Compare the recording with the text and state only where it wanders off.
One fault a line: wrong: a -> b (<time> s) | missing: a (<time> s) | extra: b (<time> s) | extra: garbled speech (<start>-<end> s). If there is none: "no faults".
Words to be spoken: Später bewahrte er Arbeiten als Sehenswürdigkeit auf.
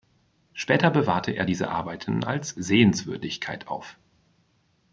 extra: diese (1.4 s)